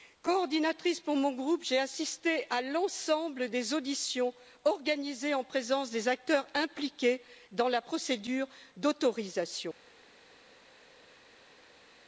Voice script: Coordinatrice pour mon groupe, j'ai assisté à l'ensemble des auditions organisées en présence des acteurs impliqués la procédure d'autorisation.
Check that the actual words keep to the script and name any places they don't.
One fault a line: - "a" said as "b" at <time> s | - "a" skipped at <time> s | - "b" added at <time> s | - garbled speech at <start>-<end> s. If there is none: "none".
- "dans" added at 7.5 s